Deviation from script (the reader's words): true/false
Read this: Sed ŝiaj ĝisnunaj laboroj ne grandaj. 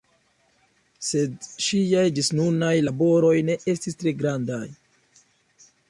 true